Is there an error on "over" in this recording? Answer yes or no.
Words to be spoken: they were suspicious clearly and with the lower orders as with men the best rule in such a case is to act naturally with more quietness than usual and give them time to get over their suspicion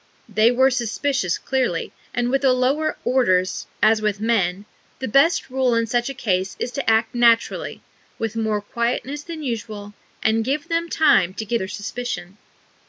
yes